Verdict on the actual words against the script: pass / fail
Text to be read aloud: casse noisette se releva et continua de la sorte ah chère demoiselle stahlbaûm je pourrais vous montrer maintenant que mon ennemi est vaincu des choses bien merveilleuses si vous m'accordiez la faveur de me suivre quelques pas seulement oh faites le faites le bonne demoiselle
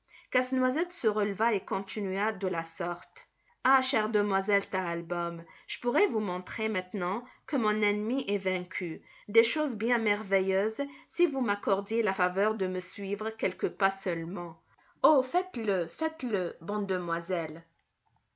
pass